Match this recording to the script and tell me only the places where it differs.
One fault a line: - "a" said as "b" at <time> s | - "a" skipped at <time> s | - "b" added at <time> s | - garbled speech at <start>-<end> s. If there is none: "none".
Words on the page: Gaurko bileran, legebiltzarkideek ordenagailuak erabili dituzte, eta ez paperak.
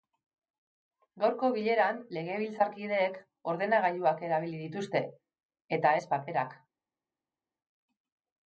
none